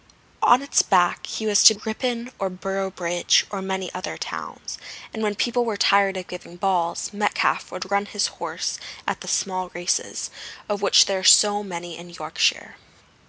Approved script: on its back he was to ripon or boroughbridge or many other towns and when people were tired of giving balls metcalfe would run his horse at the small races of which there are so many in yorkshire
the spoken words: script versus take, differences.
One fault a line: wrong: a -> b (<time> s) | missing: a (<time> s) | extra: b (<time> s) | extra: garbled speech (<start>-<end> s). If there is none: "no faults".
no faults